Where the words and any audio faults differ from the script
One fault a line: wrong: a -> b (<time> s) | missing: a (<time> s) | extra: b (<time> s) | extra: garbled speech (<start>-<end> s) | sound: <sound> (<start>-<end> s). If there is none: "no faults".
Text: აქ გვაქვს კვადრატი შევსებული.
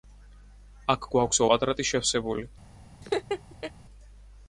sound: laugh (3.0-3.7 s)